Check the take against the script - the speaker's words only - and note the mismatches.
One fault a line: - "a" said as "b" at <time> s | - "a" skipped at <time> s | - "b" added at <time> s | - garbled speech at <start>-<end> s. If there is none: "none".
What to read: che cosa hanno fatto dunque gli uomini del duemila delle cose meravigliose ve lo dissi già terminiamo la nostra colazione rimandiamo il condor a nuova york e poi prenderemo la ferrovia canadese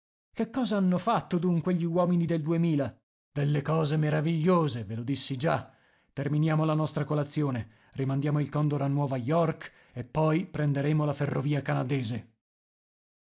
none